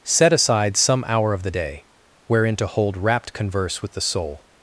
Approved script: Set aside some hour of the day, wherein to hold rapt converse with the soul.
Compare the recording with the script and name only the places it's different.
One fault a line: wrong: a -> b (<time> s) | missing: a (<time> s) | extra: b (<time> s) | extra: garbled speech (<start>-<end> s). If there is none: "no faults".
no faults